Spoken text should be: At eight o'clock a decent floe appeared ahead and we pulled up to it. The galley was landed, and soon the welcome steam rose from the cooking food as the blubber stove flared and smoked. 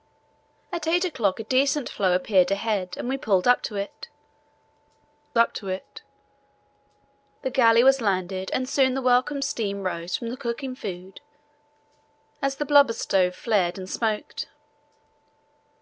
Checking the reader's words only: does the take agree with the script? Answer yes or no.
no